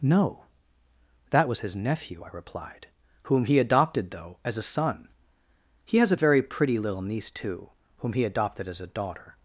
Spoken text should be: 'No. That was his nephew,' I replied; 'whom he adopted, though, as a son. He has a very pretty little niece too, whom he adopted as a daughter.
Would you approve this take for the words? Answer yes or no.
yes